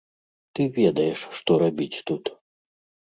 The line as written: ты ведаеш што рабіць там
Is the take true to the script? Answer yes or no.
no